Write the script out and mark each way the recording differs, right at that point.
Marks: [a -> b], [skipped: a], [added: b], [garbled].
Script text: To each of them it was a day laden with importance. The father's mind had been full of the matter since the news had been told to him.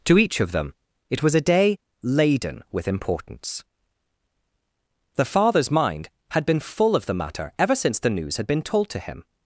To each of them it was a day laden with importance. The father's mind had been full of the matter [added: ever] since the news had been told to him.